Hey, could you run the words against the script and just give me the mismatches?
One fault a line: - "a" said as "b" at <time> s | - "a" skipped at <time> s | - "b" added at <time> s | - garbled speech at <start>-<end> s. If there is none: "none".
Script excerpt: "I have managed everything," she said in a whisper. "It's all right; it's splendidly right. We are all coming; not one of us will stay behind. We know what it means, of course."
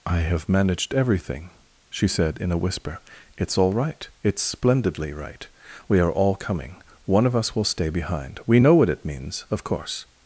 - "not" skipped at 6.8 s